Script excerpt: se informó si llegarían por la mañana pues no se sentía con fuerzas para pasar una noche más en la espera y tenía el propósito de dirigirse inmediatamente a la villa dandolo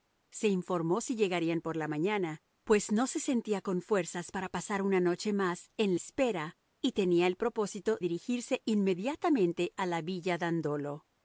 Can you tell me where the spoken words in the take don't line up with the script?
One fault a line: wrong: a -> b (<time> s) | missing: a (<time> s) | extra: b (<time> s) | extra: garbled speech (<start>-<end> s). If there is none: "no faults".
missing: la (5.9 s)
missing: de (8.0 s)